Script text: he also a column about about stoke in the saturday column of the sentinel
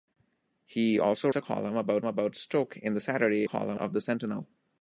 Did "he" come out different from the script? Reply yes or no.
no